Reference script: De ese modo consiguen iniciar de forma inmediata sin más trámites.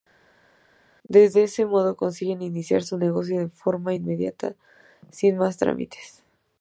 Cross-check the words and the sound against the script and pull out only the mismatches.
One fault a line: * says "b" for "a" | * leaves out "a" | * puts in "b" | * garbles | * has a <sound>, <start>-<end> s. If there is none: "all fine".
* puts in "su negocio"